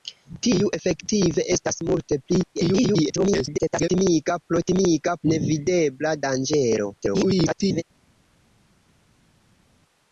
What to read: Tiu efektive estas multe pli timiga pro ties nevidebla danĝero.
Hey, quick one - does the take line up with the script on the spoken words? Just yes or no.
no